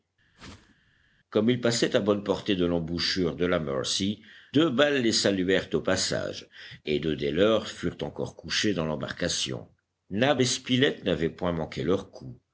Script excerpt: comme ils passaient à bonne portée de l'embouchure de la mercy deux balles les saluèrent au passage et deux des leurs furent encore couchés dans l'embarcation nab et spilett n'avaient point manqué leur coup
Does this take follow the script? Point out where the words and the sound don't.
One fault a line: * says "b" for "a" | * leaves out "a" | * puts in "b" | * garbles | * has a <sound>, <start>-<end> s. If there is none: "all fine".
* has a whoosh, 0.4-0.8 s